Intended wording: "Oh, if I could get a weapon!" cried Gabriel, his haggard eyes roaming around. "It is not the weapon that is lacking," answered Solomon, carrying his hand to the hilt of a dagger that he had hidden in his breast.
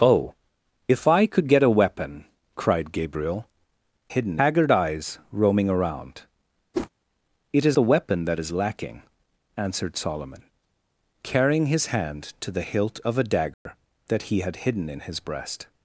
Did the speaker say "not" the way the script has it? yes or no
no